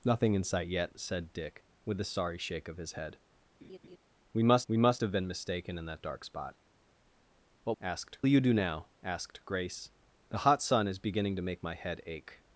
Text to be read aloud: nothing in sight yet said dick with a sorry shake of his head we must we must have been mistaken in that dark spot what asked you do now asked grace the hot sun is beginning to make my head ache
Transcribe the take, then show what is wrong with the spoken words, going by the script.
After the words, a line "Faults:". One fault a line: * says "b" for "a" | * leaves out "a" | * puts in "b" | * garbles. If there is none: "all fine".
nothing in sight yet said dick with a sorry shake of his head we must we must have been mistaken in that dark spot what asked you do now asked grace the hot sun is beginning to make my head ache
Faults:
all fine